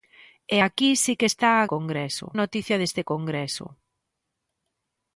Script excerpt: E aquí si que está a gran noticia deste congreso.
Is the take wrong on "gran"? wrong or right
wrong